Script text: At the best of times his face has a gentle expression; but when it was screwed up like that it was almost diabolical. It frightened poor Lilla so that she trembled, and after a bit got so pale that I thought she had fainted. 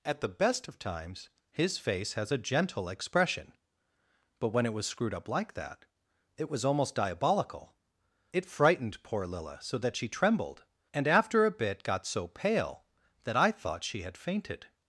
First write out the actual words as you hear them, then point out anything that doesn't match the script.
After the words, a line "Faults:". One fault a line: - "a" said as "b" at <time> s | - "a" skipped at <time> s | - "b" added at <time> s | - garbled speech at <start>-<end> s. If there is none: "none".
At the best of times his face has a gentle expression; but when it was screwed up like that it was almost diabolical. It frightened poor Lilla so that she trembled, and after a bit got so pale that I thought she had fainted.
Faults:
none